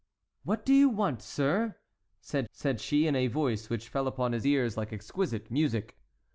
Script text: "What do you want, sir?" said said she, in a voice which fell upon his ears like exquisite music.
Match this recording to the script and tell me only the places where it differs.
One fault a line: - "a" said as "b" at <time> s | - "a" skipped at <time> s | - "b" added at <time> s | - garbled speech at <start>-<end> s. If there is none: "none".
none